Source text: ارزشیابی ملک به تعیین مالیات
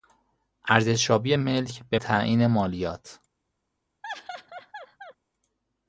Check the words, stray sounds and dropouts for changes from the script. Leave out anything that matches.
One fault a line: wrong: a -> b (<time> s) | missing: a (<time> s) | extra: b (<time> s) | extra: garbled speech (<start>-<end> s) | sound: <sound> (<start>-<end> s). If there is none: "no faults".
sound: laugh (4.0-5.1 s)